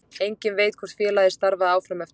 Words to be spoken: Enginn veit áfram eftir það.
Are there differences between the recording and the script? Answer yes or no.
yes